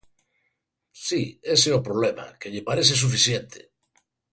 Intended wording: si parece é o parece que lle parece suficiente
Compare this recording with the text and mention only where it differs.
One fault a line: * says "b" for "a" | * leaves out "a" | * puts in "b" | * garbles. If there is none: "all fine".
* says "ese" for "parece"
* says "problema" for "parece"